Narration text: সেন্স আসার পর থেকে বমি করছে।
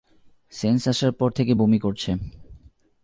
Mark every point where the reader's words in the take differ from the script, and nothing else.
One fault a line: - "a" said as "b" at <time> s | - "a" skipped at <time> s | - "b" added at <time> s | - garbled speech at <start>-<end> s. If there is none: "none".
none